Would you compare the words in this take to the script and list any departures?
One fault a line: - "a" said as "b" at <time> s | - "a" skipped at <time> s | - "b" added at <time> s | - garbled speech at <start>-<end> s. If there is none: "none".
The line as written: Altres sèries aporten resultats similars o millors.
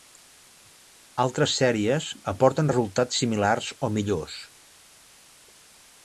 none